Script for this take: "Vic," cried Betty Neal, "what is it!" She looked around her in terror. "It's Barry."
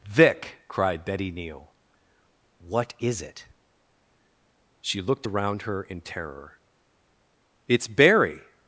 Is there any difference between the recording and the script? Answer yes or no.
no